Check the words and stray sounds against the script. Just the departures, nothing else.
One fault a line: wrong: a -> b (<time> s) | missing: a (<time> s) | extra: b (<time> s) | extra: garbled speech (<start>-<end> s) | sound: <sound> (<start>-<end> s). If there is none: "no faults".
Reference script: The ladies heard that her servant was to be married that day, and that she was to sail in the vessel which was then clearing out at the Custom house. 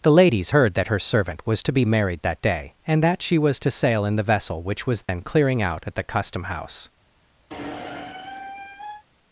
sound: dropout (5.0-5.1 s)
sound: squeak (7.5-9.0 s)